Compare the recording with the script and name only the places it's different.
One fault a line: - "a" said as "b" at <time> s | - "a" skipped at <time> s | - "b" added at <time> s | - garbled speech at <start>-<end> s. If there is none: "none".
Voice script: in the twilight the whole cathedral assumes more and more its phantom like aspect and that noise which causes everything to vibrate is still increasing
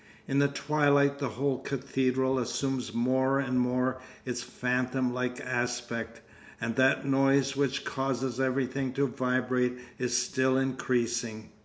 none